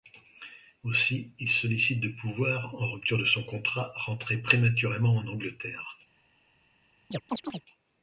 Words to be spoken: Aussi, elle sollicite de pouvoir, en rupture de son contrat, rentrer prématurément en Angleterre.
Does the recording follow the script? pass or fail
fail